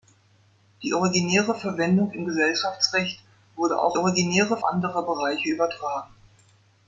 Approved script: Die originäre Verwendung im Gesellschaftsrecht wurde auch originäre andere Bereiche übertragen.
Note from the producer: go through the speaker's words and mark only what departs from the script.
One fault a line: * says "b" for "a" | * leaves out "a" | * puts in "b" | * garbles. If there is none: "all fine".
all fine